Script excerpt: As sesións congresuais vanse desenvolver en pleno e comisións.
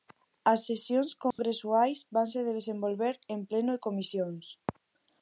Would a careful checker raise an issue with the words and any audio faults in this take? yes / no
yes